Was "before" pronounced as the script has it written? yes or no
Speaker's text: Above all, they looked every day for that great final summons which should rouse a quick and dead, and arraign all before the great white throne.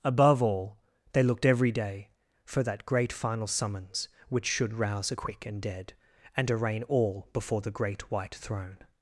yes